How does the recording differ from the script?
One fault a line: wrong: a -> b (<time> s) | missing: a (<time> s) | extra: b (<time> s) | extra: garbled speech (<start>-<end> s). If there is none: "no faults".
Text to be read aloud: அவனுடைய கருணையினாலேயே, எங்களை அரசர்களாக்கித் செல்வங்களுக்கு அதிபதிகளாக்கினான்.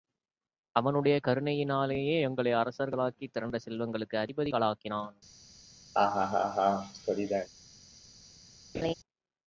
extra: திரண்ட (3.3 s)